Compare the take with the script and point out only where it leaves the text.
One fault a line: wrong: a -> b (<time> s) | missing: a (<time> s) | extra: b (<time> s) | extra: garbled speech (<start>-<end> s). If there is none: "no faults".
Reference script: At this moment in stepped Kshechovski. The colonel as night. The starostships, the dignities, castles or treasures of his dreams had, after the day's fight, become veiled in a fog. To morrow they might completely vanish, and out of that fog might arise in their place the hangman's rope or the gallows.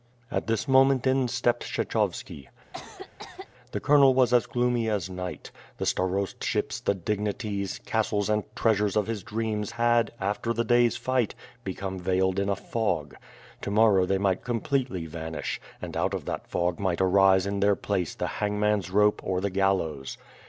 extra: was (4.1 s)
extra: gloomy as (4.4 s)
wrong: or -> and (8.3 s)